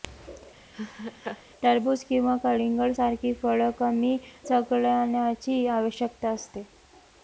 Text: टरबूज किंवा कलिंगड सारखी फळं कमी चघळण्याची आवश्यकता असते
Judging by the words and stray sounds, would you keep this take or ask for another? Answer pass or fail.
fail